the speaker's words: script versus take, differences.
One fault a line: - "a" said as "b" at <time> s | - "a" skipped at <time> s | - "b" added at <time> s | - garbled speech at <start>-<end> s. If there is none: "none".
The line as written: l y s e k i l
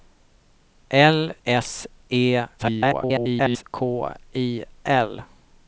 - "y" skipped at 1.4 s
- garbled speech at 2.6-3.6 s